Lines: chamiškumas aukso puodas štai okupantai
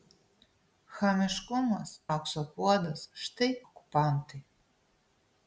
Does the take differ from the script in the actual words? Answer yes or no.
no